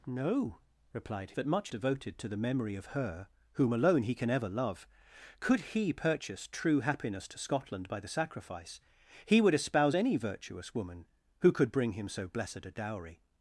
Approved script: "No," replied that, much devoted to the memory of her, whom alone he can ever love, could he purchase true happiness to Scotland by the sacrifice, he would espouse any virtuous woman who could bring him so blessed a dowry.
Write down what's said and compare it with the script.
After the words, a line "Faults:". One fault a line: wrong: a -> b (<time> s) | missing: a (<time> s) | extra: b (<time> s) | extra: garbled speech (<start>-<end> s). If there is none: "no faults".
"No," replied that, much devoted to the memory of her, whom alone he can ever love, could he purchase true happiness to Scotland by the sacrifice, he would espouse any virtuous woman who could bring him so blessed a dowry.
Faults:
no faults